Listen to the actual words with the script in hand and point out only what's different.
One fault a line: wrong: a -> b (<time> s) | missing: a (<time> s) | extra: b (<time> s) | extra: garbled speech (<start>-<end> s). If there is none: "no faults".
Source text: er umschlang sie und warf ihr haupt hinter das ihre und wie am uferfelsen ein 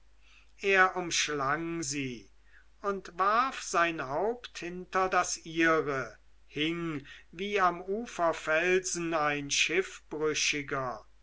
wrong: ihr -> sein (3.6 s)
wrong: und -> hing (6.4 s)